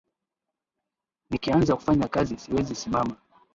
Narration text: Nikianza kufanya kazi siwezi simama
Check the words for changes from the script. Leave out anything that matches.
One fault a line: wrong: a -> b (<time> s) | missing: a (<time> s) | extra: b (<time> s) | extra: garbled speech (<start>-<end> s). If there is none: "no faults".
no faults